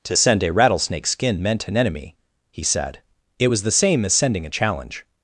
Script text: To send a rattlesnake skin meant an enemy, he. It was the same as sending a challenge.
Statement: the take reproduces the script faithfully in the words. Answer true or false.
false